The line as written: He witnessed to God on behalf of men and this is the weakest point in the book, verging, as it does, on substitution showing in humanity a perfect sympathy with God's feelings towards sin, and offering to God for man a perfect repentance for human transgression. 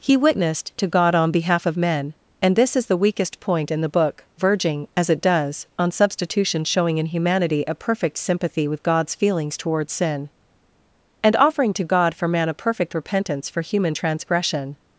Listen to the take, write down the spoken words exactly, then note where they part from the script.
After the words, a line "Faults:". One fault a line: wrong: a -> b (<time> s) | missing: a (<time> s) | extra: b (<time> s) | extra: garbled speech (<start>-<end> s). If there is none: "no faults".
He witnessed to God on behalf of men and this is the weakest point in the book, verging, as it does, on substitution showing in humanity a perfect sympathy with God's feelings towards sin, and offering to God for man a perfect repentance for human transgression.
Faults:
no faults